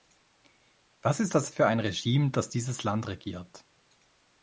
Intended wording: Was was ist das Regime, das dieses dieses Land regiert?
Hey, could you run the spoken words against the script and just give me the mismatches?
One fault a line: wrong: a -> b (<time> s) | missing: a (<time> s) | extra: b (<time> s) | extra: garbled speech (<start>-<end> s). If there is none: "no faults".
missing: was (1.2 s)
extra: für ein (1.5 s)
missing: dieses (2.8 s)